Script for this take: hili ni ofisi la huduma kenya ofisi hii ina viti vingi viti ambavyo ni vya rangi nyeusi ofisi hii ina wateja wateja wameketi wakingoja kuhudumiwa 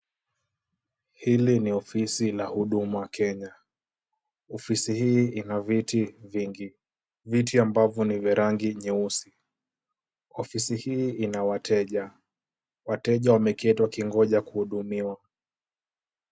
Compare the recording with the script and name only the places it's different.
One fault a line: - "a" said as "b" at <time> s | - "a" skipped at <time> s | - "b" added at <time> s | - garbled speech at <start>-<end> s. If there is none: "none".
none